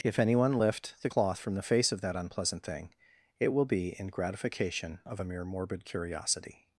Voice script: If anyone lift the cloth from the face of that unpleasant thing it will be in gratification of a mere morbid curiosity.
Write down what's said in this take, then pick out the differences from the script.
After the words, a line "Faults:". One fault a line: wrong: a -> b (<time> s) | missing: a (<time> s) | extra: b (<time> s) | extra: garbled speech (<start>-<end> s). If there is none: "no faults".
If anyone lift the cloth from the face of that unpleasant thing it will be in gratification of a mere morbid curiosity.
Faults:
no faults